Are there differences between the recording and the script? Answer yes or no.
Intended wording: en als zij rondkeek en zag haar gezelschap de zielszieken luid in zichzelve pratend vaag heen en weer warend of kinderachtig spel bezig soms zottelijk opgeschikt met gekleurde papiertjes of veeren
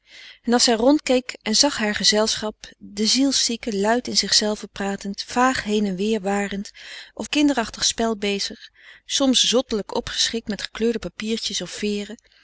no